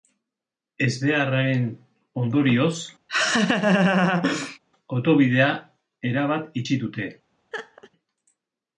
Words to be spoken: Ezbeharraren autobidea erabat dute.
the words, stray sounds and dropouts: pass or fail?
fail